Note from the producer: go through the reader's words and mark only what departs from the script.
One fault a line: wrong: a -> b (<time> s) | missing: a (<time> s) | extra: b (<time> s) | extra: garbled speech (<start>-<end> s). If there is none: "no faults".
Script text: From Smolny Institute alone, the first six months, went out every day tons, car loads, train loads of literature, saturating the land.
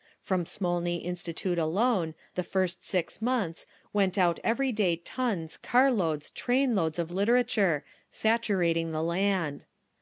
no faults